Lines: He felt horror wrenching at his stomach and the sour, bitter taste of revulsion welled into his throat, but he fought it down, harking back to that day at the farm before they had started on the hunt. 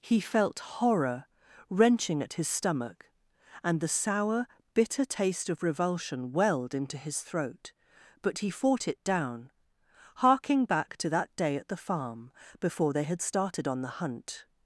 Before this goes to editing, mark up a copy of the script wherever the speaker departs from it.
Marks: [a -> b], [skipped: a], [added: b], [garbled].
He felt horror wrenching at his stomach and the sour, bitter taste of revulsion welled into his throat, but he fought it down, harking back to that day at the farm before they had started on the hunt.